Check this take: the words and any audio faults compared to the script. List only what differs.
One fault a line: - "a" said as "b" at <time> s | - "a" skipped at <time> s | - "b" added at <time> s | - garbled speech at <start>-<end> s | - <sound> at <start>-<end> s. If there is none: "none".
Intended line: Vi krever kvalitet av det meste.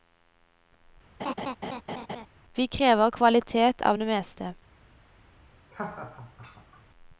- laugh at 1.2-2.3 s
- laugh at 5.7-6.9 s